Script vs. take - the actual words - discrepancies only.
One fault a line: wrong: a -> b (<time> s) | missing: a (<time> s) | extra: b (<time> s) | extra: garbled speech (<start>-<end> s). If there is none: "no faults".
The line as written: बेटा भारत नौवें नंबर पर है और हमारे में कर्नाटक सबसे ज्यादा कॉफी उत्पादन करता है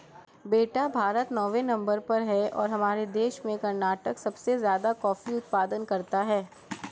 extra: देश (3.1 s)